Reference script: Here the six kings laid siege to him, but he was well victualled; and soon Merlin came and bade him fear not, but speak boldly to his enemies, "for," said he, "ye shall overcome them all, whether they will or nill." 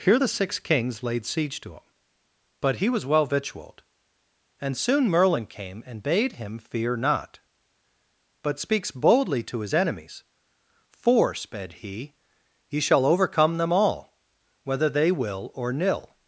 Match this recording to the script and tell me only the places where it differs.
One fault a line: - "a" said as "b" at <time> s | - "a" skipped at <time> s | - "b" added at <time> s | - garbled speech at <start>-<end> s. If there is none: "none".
- "speak" said as "speaks" at 8.6 s
- "said" said as "sped" at 11.3 s